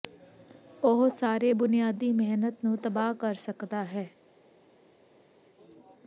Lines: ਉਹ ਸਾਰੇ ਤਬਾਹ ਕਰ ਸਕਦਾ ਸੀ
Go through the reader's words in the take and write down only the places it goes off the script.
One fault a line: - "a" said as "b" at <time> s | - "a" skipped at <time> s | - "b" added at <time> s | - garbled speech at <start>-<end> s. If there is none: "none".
- "ਬੁਨਿਆਦੀ ਮਿਹਨਤ ਨੂੰ" added at 1.5 s
- "ਸੀ" said as "ਹੈ" at 3.8 s